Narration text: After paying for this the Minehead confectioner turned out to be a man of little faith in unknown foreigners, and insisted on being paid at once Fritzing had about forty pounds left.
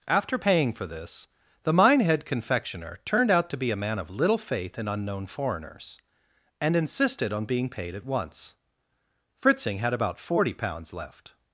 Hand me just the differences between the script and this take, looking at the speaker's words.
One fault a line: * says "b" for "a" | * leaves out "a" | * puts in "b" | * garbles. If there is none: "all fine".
all fine